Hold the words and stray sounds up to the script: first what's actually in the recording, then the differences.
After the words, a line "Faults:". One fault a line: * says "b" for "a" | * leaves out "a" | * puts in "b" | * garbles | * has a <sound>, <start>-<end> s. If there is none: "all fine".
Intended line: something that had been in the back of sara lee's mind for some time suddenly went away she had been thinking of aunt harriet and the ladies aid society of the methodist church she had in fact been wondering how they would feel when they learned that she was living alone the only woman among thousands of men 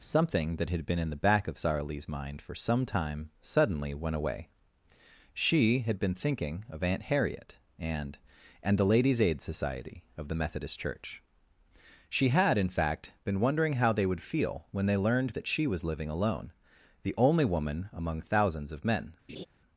something that had been in the back of sara lee's mind for some time suddenly went away she had been thinking of aunt harriet and and the ladies aid society of the methodist church she had in fact been wondering how they would feel when they learned that she was living alone the only woman among thousands of men
Faults:
* puts in "and"
* has a laugh, 19.3-19.5 s